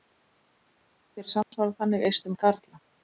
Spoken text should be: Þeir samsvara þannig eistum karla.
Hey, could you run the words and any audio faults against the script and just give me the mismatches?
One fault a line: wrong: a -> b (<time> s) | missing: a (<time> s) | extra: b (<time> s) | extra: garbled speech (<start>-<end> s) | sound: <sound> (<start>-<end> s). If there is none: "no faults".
sound: dropout (1.4-1.5 s)